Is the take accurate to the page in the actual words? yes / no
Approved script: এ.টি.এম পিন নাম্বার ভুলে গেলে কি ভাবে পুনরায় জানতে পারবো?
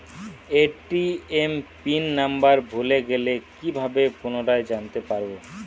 yes